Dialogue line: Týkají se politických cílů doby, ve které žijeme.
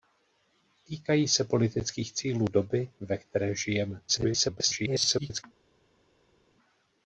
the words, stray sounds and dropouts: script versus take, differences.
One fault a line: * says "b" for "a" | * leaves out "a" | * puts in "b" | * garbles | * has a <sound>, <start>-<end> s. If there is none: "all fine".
* garbles